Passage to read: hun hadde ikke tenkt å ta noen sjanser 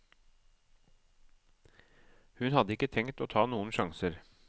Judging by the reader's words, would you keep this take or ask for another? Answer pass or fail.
pass